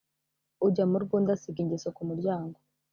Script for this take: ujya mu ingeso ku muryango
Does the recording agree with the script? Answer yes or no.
no